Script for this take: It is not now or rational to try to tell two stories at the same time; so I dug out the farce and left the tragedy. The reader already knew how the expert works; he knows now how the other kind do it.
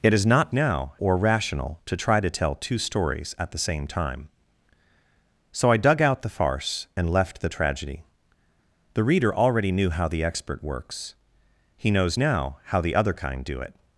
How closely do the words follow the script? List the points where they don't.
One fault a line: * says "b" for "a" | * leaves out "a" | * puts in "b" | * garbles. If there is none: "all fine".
all fine